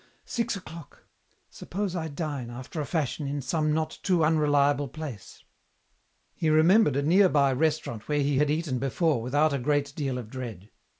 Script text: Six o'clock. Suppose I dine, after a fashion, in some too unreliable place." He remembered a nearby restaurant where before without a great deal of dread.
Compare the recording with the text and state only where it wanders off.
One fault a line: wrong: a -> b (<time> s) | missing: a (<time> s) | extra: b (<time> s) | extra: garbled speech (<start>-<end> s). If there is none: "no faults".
extra: not (3.7 s)
extra: he had eaten (8.2 s)